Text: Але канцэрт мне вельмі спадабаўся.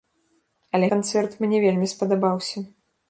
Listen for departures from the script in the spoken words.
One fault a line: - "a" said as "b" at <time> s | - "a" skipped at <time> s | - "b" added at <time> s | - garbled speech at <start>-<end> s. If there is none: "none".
none